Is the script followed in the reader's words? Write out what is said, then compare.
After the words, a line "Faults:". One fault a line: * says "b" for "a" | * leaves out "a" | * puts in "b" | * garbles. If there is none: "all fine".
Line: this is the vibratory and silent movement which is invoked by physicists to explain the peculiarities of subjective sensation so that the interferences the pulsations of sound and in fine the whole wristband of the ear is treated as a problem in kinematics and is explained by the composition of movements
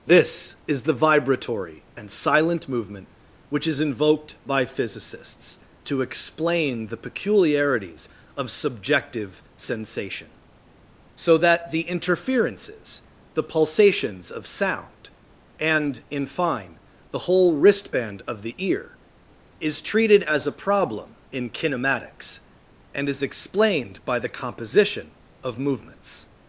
this is the vibratory and silent movement which is invoked by physicists to explain the peculiarities of subjective sensation so that the interferences the pulsations of sound and in fine the whole wristband of the ear is treated as a problem in kinematics and is explained by the composition of movements
Faults:
all fine